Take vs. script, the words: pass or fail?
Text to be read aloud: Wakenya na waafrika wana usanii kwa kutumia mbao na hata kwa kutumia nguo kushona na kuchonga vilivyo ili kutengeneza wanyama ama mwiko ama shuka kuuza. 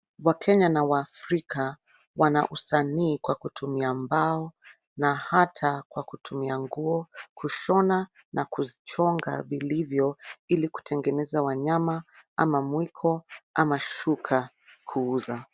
pass